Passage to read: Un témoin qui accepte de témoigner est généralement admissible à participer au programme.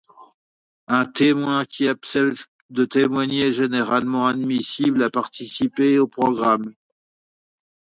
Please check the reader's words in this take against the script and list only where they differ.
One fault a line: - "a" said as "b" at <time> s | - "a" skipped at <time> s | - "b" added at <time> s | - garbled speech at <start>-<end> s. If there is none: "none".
none